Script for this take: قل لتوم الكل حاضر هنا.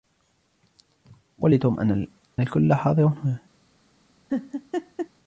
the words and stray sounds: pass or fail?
fail